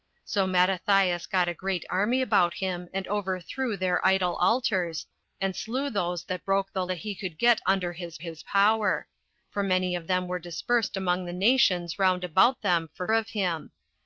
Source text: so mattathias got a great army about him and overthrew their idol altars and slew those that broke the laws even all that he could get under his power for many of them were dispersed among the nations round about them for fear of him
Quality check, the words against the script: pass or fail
fail